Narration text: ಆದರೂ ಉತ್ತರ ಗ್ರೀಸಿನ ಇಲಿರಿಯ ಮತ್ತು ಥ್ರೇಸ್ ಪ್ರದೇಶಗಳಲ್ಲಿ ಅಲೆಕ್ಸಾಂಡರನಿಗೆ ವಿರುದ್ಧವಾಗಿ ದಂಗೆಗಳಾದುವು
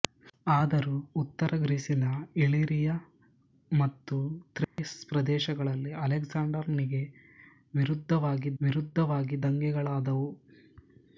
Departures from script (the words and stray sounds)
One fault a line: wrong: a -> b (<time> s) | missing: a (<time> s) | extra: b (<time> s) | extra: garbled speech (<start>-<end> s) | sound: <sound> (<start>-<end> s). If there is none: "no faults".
sound: dropout (4.6-4.8 s)
extra: ವಿರುದ್ಧವಾಗಿ (8.6 s)